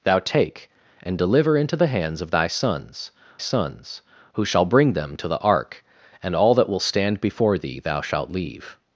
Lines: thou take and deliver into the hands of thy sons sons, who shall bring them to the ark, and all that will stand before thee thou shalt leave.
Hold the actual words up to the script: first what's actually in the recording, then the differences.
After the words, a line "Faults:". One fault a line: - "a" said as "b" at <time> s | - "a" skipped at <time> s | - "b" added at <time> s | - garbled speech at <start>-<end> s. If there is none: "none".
thou take and deliver into the hands of thy sons sons, who shall bring them to the ark, and all that will stand before thee thou shalt leave.
Faults:
none